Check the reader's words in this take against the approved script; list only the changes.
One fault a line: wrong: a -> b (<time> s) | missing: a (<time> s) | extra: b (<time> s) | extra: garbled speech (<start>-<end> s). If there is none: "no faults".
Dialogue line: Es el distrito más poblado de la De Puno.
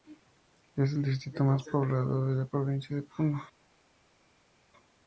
extra: Provincia (2.4 s)